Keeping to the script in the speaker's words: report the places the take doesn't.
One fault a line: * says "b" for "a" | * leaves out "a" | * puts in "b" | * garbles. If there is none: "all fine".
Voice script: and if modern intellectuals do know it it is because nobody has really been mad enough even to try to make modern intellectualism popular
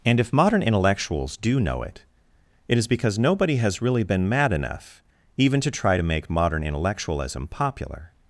all fine